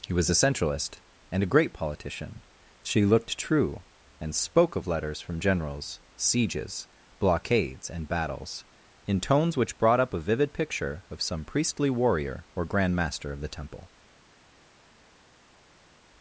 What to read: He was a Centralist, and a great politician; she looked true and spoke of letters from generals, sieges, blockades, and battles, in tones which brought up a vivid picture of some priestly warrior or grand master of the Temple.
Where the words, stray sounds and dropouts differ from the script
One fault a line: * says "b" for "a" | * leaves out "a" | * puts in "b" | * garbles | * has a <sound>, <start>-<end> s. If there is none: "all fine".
all fine